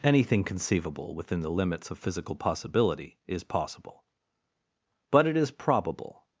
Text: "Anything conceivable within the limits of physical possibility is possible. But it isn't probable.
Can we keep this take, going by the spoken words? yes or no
no